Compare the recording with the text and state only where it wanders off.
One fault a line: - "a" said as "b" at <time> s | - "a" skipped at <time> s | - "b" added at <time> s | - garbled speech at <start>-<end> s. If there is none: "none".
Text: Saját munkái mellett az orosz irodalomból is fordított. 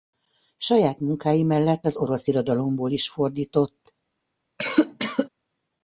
none